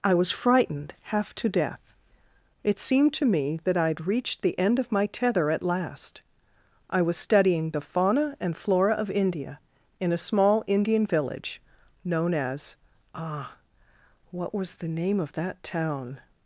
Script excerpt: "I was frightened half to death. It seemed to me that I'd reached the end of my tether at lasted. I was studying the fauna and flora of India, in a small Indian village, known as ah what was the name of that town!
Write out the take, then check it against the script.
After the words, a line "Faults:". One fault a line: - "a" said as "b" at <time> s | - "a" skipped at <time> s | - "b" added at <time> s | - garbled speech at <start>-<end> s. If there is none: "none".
"I was frightened half to death. It seemed to me that I'd reached the end of my tether at last. I was studying the fauna and flora of India, in a small Indian village, known as ah what was the name of that town!
Faults:
- "lasted" said as "last" at 5.6 s